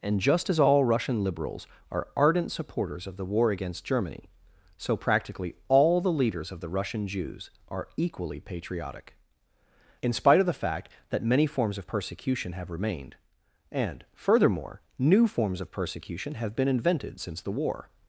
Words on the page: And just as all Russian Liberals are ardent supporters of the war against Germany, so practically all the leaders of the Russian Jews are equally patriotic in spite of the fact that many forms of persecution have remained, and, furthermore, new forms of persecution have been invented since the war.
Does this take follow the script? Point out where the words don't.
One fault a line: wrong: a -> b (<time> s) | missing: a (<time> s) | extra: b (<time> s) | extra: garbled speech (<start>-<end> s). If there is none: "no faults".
no faults